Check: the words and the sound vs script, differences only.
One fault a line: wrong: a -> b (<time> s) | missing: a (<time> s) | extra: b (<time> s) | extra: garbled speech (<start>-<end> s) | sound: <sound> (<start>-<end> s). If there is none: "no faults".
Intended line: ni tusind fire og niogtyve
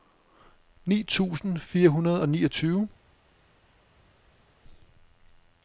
extra: hundrede (1.9 s)